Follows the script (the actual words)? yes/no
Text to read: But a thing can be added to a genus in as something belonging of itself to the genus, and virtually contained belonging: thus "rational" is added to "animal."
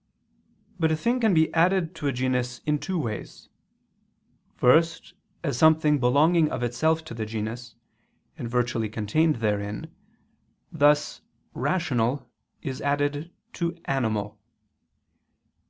no